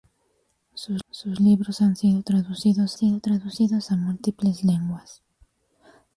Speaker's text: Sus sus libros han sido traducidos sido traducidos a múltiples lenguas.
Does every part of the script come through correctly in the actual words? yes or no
yes